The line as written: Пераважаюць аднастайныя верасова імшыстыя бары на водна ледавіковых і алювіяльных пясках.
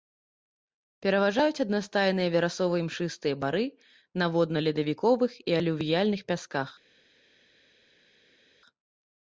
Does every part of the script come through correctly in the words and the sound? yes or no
yes